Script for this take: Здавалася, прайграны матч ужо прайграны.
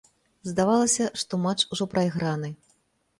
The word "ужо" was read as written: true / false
true